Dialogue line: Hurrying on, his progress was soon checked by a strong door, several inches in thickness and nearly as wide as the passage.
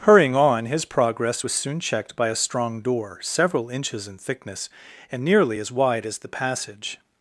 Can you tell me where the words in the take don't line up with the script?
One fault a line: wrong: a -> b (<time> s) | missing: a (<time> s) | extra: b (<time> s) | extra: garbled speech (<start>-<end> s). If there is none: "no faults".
no faults